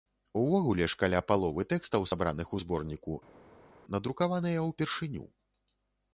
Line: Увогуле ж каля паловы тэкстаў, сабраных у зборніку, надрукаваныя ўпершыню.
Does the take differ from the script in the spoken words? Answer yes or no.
no